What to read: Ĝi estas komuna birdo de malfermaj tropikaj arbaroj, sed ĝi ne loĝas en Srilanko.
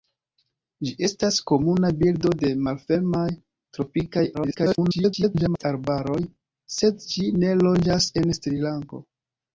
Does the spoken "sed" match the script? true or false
true